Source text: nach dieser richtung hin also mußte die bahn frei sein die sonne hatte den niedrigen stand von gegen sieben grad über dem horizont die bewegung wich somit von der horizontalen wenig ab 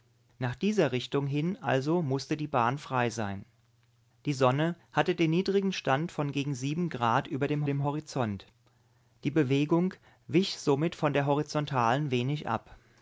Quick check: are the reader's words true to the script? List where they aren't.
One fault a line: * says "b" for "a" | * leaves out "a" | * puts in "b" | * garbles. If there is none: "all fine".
* puts in "dem"